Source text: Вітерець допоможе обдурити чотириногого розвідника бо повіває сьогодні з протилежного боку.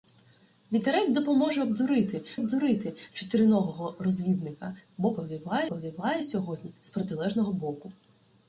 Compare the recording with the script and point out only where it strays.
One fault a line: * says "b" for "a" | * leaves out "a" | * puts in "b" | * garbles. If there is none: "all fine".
* puts in "обдурити"
* puts in "повіває"